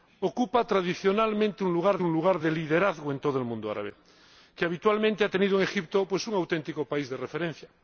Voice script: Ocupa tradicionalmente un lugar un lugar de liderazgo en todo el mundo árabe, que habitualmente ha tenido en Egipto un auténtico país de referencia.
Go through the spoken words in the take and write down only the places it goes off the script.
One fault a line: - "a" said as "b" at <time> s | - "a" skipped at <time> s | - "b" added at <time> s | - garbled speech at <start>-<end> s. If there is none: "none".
none